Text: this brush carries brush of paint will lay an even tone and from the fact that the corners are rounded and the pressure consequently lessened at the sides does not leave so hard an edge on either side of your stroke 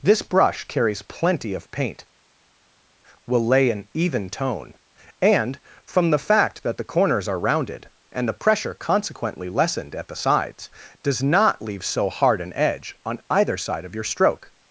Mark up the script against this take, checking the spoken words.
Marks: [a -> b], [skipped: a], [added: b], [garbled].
this brush carries [brush -> plenty] of paint will lay an even tone and from the fact that the corners are rounded and the pressure consequently lessened at the sides does not leave so hard an edge on either side of your stroke